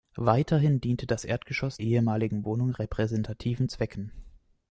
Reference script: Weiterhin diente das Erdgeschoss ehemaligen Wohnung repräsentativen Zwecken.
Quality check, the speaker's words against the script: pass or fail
pass